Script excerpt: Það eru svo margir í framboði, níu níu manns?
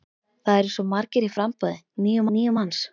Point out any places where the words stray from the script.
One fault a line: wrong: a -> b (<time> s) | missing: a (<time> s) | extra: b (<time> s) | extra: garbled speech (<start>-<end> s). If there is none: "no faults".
no faults